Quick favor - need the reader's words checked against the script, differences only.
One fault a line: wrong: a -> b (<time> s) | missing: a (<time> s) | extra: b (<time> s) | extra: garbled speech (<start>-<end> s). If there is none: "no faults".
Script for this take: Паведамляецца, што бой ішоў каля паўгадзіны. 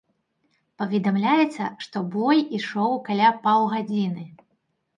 no faults